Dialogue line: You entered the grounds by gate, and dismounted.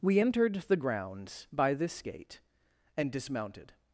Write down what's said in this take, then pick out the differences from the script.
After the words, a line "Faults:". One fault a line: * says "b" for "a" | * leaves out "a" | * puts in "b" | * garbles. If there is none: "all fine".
We entered the grounds by this gate, and dismounted.
Faults:
* says "We" for "You"
* puts in "this"